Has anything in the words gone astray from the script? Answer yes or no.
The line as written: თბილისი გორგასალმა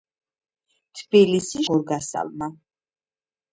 no